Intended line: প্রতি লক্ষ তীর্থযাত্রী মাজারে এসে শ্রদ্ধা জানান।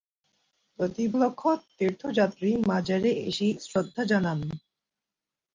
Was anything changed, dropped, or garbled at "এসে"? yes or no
no